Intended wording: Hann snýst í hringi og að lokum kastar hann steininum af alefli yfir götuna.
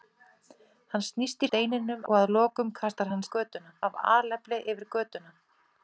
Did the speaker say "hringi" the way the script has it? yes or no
no